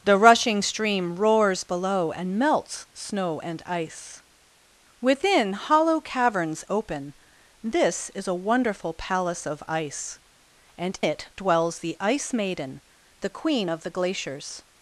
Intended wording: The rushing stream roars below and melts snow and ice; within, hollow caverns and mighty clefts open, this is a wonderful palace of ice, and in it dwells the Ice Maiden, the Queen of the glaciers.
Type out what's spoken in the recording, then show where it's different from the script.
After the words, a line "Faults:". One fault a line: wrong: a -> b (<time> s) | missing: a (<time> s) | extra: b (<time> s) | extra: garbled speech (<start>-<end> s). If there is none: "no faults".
The rushing stream roars below and melts snow and ice; within, hollow caverns open, this is a wonderful palace of ice, and it dwells the Ice Maiden, the Queen of the glaciers.
Faults:
missing: and mighty clefts (6.6 s)
missing: in (11.0 s)